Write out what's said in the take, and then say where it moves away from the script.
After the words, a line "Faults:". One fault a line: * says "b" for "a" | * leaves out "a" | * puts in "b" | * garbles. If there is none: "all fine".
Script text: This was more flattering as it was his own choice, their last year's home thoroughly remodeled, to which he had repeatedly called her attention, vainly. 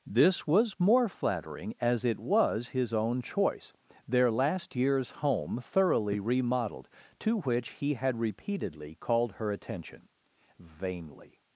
This was more flattering as it was his own choice, their last year's home thoroughly remodeled, to which he had repeatedly called her attention, vainly.
Faults:
all fine